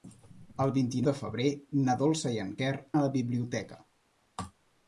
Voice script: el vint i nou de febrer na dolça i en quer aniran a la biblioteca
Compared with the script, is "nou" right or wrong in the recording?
wrong